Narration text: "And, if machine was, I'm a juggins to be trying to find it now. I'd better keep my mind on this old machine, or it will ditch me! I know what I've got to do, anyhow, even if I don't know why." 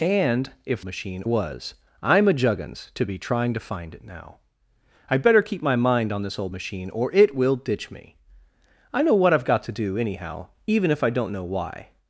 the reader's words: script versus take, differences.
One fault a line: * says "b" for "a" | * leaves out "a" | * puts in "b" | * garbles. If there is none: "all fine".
all fine